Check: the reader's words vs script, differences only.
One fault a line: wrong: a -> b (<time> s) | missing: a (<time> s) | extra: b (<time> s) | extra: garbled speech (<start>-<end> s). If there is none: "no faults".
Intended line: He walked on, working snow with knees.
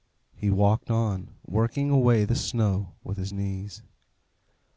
extra: away the (1.9 s)
extra: his (3.2 s)